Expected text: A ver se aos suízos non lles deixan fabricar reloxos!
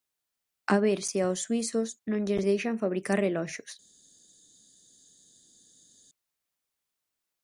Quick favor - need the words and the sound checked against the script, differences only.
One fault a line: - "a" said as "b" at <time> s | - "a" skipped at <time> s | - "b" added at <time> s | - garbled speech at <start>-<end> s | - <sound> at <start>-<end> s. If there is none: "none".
none